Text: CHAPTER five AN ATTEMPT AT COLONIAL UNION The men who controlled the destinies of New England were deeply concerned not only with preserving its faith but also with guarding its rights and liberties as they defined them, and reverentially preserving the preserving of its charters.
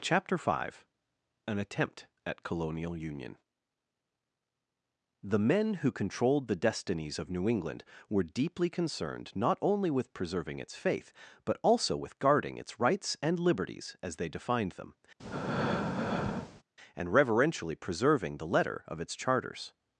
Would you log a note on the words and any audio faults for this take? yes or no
yes